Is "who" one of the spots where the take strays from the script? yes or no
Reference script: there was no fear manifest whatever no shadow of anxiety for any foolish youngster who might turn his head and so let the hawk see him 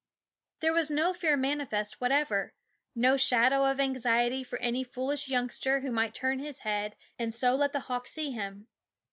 no